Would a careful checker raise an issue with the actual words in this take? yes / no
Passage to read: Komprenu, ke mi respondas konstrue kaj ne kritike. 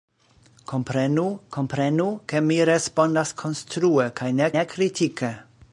yes